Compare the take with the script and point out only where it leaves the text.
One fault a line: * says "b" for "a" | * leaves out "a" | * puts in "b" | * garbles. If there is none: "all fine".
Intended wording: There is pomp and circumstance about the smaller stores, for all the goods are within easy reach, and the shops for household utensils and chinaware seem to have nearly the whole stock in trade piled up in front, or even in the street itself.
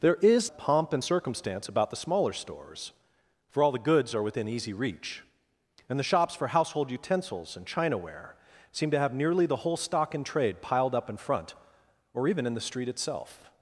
all fine